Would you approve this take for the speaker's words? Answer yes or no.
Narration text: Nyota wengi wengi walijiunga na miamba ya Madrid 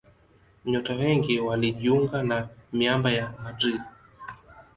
no